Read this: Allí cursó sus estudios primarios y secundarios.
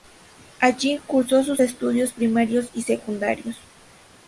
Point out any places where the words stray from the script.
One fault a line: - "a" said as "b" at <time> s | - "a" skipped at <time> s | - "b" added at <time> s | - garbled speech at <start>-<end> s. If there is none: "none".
none